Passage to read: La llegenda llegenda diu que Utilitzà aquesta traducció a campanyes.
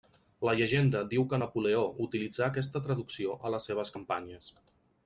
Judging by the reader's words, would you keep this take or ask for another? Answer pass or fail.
fail